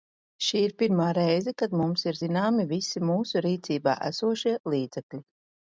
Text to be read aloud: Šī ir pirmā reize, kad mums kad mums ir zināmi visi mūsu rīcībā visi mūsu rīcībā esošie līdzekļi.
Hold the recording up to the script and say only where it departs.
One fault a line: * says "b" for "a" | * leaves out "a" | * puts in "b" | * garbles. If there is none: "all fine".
* leaves out "kad mums"
* leaves out "visi mūsu rīcībā"